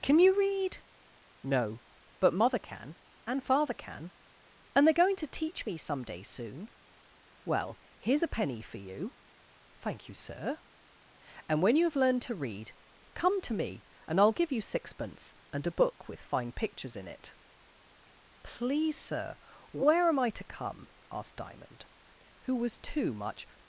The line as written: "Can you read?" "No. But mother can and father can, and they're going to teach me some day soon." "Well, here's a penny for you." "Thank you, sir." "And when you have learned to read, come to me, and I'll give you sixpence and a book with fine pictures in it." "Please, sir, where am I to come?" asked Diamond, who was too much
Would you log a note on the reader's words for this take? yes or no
no